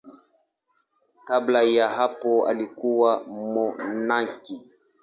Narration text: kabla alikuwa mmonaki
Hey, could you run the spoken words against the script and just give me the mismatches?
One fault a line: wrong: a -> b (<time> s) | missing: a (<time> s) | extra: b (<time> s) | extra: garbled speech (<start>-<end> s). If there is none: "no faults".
extra: ya hapo (1.6 s)